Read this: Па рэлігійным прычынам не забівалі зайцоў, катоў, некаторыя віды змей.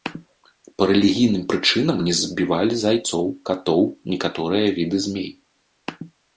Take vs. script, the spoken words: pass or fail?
pass